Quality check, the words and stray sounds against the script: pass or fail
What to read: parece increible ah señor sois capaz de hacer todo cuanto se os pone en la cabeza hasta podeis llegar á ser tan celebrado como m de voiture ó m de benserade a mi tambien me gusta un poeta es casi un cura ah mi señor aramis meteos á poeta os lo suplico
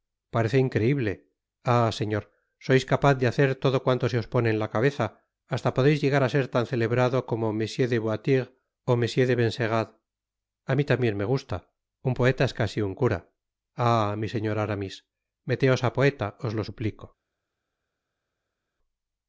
pass